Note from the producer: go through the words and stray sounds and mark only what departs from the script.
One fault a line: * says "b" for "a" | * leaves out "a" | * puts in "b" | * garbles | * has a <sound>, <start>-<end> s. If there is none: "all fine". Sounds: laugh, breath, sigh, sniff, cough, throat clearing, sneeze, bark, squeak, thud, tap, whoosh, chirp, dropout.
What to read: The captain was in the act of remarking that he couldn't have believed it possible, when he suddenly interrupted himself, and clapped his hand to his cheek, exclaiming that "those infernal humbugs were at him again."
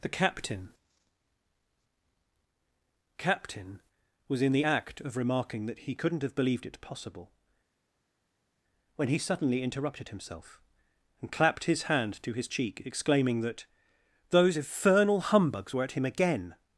* puts in "captain"